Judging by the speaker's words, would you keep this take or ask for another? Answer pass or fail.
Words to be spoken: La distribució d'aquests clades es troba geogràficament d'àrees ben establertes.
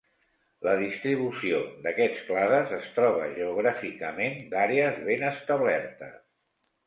pass